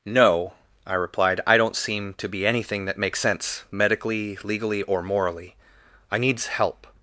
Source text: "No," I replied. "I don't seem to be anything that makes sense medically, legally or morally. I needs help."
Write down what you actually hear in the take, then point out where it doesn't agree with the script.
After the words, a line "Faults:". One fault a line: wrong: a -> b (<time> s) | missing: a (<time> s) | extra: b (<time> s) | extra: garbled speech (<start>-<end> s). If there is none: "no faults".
"No," I replied. "I don't seem to be anything that makes sense medically, legally or morally. I needs help."
Faults:
no faults